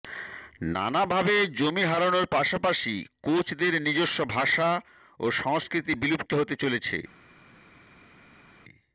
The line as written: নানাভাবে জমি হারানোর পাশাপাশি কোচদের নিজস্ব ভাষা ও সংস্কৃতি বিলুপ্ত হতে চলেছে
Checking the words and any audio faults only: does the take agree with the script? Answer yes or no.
yes